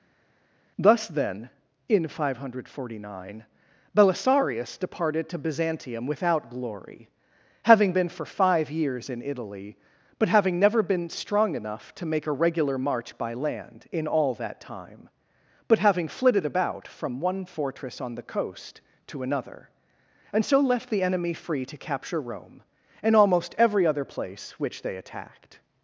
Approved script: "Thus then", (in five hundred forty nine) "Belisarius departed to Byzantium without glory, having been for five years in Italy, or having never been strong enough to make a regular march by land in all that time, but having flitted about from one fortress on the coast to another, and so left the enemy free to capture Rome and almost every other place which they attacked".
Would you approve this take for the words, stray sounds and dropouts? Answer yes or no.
no